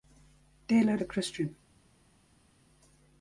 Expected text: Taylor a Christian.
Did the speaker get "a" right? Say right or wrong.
right